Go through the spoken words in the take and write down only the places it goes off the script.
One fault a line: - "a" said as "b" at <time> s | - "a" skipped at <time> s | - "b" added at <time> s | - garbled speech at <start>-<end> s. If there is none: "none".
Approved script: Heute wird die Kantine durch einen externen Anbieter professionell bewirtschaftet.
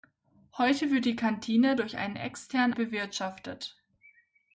- "Anbieter professionell" skipped at 2.7 s